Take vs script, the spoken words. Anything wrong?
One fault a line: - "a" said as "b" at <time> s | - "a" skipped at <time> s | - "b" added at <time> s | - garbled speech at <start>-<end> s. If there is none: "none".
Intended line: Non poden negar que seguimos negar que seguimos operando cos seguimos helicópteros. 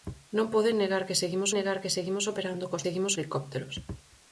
none